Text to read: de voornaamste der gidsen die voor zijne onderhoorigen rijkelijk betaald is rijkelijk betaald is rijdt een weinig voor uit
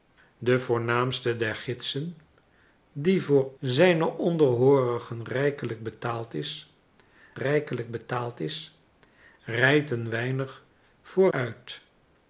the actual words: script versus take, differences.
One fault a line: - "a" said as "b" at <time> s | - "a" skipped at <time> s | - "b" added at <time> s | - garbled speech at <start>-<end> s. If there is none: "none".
none